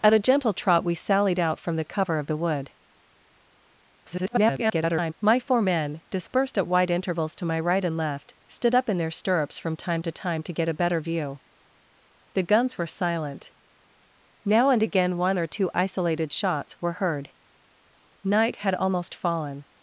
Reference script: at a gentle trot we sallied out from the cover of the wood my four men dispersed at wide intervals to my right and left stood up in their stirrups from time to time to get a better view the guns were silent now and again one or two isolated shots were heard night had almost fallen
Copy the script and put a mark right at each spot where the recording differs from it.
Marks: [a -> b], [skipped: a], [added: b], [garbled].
at a gentle trot we sallied out from the cover of the wood [garbled] my four men dispersed at wide intervals to my right and left stood up in their stirrups from time to time to get a better view the guns were silent now and again one or two isolated shots were heard night had almost fallen